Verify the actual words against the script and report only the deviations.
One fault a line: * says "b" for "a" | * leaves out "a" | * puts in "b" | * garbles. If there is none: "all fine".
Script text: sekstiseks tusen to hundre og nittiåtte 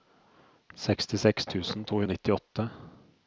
* leaves out "hundre"